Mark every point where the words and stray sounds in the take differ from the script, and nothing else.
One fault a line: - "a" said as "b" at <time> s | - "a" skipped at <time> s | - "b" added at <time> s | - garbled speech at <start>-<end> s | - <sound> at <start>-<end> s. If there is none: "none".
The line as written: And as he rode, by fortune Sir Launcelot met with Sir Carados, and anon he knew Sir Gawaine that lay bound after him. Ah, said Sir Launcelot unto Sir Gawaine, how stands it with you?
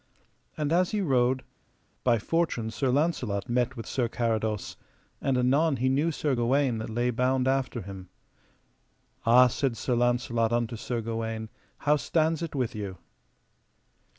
none